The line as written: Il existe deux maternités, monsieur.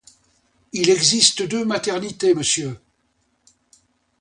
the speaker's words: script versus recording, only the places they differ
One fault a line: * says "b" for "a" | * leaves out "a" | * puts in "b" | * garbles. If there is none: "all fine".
all fine